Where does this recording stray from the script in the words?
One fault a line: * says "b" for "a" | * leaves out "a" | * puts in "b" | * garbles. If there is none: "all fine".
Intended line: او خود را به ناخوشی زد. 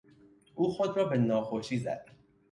all fine